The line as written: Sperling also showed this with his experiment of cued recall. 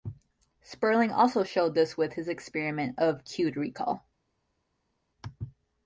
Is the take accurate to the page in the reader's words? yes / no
yes